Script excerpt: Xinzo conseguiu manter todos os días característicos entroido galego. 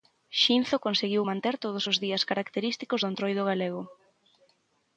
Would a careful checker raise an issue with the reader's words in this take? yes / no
yes